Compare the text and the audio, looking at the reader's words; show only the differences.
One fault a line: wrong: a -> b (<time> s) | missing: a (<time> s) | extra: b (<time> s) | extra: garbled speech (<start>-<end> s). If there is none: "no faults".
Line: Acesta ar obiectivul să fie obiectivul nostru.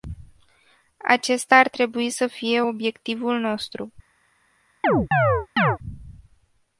wrong: obiectivul -> trebui (1.7 s)